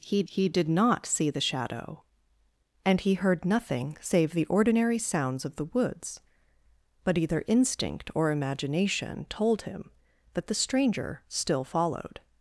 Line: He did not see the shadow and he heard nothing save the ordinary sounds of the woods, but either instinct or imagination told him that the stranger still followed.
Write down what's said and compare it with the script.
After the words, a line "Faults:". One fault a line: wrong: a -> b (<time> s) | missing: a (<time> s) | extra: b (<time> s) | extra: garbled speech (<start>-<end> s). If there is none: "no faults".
He he did not see the shadow and he heard nothing save the ordinary sounds of the woods, but either instinct or imagination told him that the stranger still followed.
Faults:
extra: he (0.3 s)